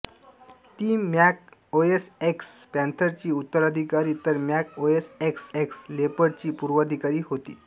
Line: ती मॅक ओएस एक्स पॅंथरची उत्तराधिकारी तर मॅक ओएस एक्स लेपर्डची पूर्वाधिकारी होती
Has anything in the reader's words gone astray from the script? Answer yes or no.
yes